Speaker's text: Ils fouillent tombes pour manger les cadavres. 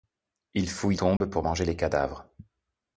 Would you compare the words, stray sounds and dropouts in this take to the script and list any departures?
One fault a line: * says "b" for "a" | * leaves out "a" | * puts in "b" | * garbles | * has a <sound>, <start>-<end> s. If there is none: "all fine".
* has a dropout, 1.2-1.2 s